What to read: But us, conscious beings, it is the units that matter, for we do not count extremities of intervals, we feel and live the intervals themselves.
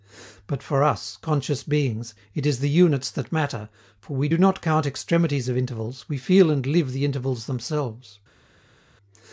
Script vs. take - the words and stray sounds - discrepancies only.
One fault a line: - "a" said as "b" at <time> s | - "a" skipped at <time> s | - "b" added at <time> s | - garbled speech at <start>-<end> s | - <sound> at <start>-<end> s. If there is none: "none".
- "for" added at 0.6 s